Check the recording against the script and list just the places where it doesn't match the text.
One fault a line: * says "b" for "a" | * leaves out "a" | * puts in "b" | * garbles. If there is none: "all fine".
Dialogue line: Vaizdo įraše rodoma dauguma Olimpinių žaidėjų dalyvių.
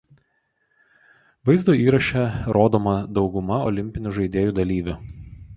all fine